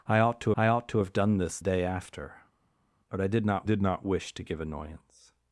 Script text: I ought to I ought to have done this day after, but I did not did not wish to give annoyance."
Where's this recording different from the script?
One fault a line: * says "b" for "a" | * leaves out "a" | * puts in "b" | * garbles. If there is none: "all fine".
all fine